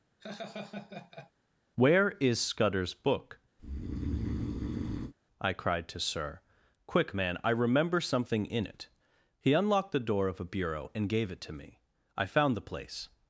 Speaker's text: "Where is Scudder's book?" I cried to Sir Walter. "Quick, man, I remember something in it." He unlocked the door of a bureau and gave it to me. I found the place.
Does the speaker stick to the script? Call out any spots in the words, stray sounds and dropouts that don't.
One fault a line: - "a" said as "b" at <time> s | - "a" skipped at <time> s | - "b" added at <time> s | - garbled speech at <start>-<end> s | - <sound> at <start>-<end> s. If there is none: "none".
- laugh at 0.2-1.3 s
- breath at 3.6-5.1 s
- "Walter" skipped at 6.4 s